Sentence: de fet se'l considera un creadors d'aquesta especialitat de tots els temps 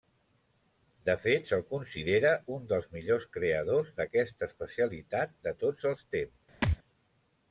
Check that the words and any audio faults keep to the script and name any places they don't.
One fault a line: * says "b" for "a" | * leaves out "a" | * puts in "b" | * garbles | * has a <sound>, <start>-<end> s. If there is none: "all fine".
* puts in "dels millors"
* has a thud, 6.6-6.8 s